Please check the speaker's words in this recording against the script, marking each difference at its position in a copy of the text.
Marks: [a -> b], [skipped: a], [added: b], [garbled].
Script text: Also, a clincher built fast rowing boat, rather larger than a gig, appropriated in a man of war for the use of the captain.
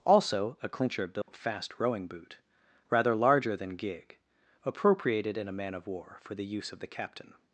Also, a clincher built fast rowing [boat, -> boot] rather larger than [skipped: a] gig, appropriated in a man of war for the use of the captain.